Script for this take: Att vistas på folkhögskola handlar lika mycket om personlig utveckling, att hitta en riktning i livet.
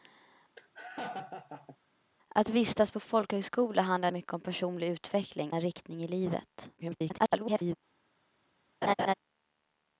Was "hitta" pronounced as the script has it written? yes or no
no